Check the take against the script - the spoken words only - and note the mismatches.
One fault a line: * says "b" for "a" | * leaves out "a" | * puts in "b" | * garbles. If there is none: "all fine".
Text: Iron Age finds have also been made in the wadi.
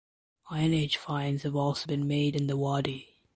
all fine